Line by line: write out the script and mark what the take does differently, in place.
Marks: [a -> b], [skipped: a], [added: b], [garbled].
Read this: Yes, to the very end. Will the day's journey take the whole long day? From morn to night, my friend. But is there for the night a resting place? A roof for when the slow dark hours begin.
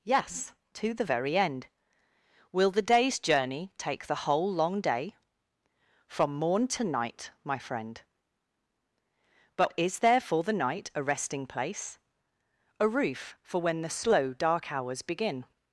Yes, to the very end. Will the day's journey take the whole long day? From morn to night, my friend. But is there for the night a resting place? A roof for when the slow dark hours begin.